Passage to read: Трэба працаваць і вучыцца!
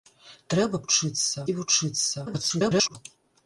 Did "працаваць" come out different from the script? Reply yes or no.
yes